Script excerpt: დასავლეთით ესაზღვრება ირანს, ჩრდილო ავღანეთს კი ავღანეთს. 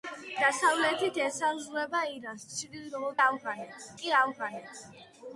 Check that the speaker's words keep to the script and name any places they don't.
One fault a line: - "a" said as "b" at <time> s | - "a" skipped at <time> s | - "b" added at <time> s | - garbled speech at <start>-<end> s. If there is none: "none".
none